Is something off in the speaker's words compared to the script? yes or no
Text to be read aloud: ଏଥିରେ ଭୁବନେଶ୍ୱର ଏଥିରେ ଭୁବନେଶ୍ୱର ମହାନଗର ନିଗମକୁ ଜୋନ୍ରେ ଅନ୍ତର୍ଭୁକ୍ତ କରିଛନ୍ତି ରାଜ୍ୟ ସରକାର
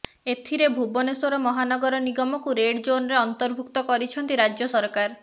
yes